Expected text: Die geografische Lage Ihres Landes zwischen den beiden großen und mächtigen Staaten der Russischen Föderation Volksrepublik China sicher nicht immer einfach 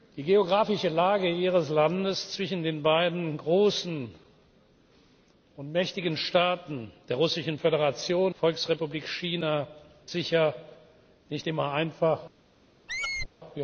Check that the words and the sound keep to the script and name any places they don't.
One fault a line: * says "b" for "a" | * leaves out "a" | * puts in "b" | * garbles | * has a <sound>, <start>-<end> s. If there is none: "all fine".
* has a squeak, 12.9-13.3 s